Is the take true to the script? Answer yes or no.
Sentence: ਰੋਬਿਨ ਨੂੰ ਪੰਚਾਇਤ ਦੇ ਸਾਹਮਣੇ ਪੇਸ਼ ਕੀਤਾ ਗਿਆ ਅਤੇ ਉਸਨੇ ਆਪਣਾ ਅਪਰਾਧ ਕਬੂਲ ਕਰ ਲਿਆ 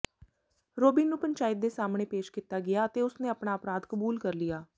yes